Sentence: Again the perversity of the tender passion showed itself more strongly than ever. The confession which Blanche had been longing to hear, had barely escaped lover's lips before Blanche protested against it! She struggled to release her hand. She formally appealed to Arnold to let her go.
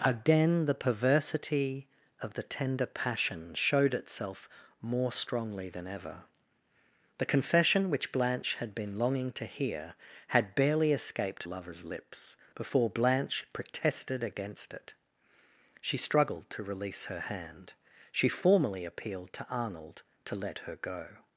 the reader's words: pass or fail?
pass